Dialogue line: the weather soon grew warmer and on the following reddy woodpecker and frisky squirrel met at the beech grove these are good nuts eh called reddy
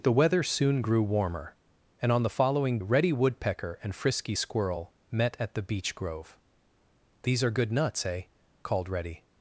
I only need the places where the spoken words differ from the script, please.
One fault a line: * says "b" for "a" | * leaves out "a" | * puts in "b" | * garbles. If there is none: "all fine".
all fine